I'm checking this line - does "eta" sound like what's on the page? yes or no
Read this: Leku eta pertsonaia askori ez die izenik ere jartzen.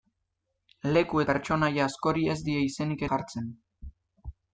no